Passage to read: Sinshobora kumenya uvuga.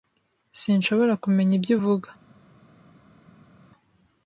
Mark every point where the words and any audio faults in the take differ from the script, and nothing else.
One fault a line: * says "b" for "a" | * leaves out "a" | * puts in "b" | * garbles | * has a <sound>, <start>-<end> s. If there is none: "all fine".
* puts in "ibyo"